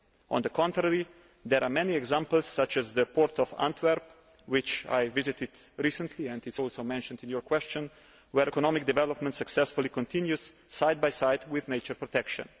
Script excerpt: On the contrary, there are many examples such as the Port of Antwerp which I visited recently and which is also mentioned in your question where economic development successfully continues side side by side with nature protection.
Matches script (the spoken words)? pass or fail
fail